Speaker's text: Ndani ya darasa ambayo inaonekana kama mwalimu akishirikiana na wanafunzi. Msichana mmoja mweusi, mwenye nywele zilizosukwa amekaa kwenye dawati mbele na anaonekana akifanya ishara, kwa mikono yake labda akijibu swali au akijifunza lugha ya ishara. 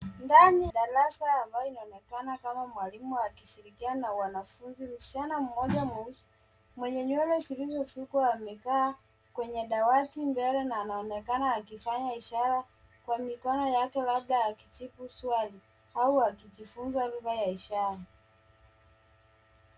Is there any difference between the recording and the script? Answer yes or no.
yes